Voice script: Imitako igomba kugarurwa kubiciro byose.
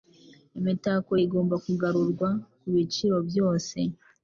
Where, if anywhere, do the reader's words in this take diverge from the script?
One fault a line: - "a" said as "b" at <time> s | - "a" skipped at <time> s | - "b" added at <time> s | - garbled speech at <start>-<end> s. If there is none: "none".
none